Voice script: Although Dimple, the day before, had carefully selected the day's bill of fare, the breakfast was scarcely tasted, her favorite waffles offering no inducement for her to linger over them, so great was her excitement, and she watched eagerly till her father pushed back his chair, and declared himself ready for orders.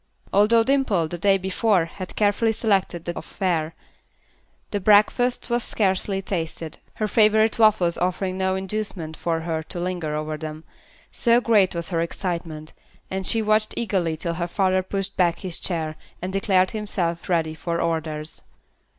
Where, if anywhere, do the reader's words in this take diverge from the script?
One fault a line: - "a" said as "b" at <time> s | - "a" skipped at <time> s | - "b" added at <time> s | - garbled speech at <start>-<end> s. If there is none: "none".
- "day's bill" skipped at 3.1 s